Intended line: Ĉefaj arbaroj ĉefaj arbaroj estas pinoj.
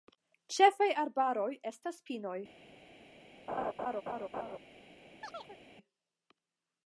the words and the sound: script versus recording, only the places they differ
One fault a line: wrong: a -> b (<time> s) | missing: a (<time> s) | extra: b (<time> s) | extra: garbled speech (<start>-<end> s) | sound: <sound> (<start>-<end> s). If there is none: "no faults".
missing: ĉefaj arbaroj (1.5 s)
sound: laugh (3.5-4.6 s)
sound: chirp (5.2-5.6 s)